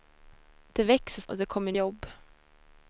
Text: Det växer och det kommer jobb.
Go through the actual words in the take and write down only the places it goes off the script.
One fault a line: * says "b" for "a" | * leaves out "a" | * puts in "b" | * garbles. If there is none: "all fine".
all fine